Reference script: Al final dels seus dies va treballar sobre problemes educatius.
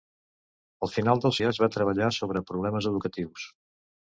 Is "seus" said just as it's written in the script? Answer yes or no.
no